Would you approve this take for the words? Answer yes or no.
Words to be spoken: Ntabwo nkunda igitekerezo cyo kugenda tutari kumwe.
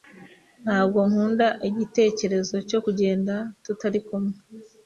yes